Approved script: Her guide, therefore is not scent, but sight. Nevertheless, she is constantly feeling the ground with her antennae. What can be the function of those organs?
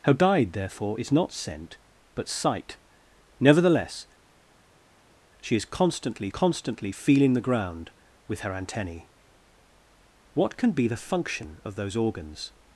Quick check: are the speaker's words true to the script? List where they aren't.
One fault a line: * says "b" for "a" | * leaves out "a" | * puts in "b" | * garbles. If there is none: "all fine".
* puts in "constantly"